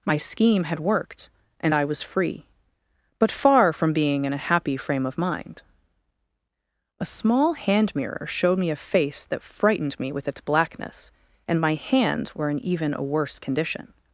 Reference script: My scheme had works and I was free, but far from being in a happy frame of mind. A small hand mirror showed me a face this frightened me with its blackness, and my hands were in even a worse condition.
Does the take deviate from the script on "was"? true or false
false